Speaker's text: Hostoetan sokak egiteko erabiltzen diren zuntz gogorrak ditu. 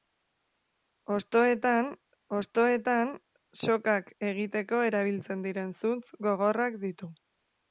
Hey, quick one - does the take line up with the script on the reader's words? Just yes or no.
no